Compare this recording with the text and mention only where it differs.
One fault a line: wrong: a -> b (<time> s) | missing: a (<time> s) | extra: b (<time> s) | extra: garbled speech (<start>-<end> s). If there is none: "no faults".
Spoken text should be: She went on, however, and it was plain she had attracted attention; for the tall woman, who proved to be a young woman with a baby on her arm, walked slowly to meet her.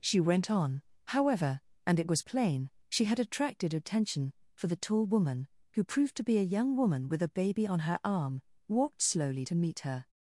no faults